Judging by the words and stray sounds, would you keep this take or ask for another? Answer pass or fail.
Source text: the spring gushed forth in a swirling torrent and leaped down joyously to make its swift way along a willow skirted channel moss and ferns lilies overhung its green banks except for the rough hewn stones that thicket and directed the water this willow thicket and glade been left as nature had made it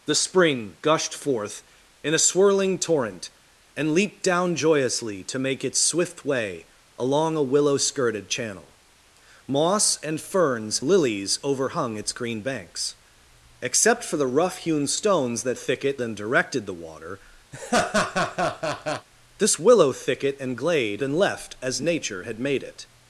fail